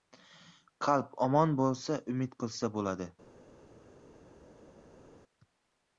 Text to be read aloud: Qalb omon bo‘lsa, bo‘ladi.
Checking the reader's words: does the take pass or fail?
fail